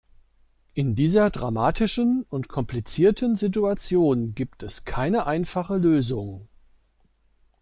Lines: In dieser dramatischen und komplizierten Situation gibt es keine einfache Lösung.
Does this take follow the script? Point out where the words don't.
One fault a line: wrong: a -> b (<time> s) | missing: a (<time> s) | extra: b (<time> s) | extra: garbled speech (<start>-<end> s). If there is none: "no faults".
no faults